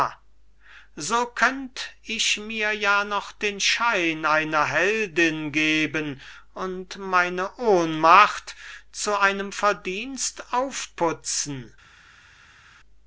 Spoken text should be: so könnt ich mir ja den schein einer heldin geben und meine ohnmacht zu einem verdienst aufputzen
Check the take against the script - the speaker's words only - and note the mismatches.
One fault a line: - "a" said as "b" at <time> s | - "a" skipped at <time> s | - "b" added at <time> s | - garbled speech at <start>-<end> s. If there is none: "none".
- "noch" added at 3.0 s